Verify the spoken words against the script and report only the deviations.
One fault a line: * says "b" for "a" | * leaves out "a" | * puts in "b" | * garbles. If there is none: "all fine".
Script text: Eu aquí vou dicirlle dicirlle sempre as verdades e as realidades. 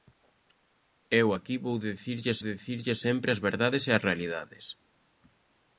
all fine